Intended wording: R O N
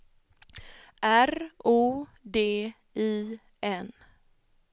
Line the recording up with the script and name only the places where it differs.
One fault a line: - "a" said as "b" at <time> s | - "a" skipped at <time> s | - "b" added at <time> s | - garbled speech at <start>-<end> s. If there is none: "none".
- "D I" added at 2.2 s